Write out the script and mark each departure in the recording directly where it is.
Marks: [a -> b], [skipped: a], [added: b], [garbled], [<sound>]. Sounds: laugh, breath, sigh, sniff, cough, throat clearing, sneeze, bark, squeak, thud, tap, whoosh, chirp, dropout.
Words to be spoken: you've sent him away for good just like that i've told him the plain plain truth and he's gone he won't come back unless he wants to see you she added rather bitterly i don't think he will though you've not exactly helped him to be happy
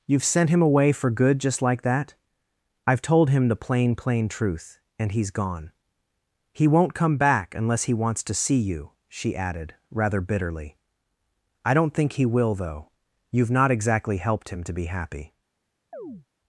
you've sent him away for good just like that i've told him the plain plain truth and he's gone he won't come back unless he wants to see you she added rather bitterly i don't think he will though you've not exactly helped him to be happy [chirp]